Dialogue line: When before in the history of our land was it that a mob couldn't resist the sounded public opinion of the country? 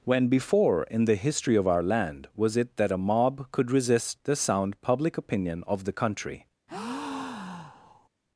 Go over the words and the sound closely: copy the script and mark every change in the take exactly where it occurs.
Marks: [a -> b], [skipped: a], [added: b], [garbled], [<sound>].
When before in the history of our land was it that a mob [couldn't -> could] resist the [sounded -> sound] public opinion of the country? [breath]